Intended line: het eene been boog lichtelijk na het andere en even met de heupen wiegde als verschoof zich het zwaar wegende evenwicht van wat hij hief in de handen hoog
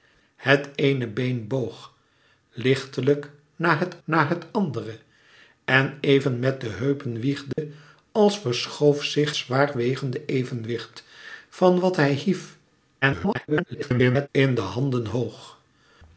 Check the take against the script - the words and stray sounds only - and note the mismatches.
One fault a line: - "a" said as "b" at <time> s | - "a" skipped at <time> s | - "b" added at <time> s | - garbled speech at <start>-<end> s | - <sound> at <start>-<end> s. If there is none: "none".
- "na het" added at 4.0 s
- dropout at 7.5-7.6 s
- "het" skipped at 9.3 s
- garbled speech at 13.0-14.3 s